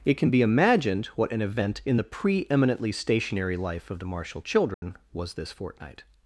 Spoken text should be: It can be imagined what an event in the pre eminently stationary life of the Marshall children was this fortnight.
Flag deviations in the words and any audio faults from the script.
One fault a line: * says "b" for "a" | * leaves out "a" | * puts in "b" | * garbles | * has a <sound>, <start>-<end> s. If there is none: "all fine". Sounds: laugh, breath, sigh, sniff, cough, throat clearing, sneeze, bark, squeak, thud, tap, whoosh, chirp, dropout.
* has a dropout, 4.7-4.8 s